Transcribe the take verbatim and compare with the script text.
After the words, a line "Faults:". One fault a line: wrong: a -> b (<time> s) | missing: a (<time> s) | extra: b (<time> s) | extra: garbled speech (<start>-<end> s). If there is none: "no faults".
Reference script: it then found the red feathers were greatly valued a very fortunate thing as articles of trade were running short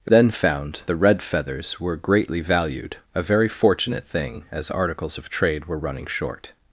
it then found the red feathers were greatly valued a very fortunate thing as articles of trade were running short
Faults:
no faults